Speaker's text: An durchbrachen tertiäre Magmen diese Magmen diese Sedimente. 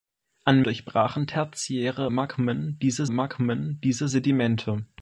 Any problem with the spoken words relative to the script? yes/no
no